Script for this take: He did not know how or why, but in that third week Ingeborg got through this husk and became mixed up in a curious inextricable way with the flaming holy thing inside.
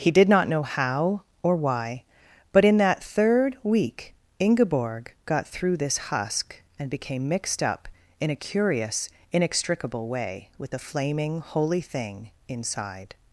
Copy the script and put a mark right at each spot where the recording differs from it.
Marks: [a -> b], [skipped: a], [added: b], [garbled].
He did not know how or why, but in that third week Ingeborg got through this husk and became mixed up in a curious inextricable way with the flaming holy thing inside.